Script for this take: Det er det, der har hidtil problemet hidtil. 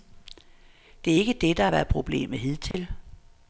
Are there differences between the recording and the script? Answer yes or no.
yes